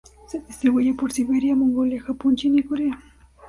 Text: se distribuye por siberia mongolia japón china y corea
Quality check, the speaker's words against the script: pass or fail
pass